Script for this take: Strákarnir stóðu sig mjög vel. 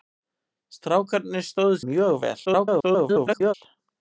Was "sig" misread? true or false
true